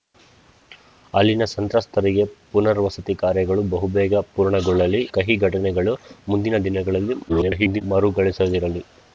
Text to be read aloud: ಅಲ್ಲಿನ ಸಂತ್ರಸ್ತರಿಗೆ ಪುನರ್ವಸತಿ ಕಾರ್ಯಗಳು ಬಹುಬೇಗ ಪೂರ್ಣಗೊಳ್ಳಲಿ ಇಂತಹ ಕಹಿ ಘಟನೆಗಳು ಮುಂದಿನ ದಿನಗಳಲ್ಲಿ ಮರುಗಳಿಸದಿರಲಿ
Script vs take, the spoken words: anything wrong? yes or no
yes